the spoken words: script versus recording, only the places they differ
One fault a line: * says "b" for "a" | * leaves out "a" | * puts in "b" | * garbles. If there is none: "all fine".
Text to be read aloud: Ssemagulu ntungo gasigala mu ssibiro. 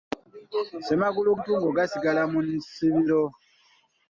all fine